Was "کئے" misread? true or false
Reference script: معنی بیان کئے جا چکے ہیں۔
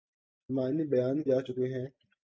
true